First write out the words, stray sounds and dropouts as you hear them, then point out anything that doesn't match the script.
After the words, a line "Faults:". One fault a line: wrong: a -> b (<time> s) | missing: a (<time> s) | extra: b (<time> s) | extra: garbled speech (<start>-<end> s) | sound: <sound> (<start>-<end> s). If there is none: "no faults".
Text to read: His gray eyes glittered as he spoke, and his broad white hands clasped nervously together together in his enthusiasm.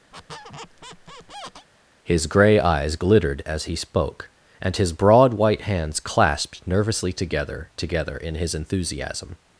His gray eyes glittered as he spoke, and his broad white hands clasped nervously together together in his enthusiasm.
Faults:
sound: squeak (0.1-1.7 s)